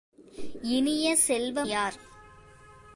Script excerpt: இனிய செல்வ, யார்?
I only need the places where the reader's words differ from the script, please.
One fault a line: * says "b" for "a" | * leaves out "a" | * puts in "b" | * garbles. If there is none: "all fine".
all fine